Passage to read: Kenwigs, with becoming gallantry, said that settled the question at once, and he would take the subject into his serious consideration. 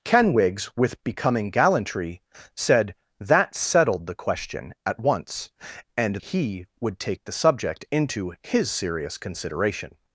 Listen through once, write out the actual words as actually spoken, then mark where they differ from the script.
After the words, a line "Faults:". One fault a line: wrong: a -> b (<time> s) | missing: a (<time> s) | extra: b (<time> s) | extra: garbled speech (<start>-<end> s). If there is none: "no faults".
Kenwigs, with becoming gallantry, said that settled the question at once, and he would take the subject into his serious consideration.
Faults:
no faults